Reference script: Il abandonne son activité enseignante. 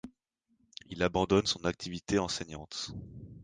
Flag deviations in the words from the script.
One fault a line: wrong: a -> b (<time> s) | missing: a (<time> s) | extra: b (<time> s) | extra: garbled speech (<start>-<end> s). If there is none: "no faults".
no faults